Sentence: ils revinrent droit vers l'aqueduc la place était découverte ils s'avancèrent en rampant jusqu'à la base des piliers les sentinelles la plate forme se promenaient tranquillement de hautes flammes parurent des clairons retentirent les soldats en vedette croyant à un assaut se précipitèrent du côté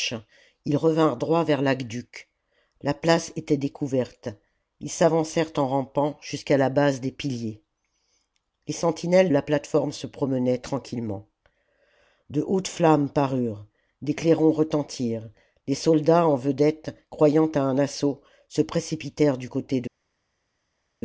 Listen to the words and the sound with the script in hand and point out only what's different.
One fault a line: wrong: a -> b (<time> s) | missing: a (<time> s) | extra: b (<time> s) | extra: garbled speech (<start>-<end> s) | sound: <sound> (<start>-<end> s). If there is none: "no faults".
no faults